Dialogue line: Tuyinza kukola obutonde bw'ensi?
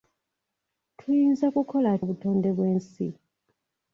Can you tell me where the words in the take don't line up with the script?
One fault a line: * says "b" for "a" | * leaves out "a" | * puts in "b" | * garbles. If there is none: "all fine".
all fine